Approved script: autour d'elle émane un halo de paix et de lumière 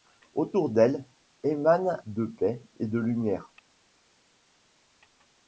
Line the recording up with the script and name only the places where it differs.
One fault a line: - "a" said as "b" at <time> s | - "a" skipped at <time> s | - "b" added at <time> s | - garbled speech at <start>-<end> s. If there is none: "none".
- "un halo" skipped at 2.0 s